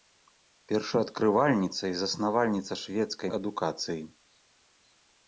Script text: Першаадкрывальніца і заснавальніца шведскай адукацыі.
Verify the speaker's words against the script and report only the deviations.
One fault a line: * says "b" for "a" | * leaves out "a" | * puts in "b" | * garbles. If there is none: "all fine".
all fine